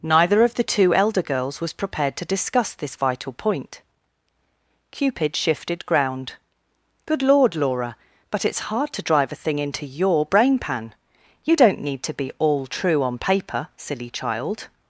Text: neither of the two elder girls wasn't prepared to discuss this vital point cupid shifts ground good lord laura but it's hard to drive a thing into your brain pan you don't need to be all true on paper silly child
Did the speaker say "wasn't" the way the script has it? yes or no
no